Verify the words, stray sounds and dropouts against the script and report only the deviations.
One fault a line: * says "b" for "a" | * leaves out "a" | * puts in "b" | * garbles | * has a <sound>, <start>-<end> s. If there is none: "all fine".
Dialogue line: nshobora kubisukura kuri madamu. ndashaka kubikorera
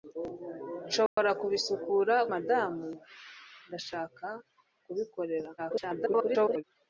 * has a dropout, 1.1-1.2 s
* leaves out "kuri"
* garbles